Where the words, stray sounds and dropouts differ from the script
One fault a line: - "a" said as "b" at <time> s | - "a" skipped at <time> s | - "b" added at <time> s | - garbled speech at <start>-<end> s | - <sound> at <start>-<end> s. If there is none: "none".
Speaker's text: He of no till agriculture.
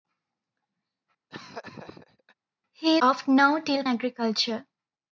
- laugh at 1.3-2.3 s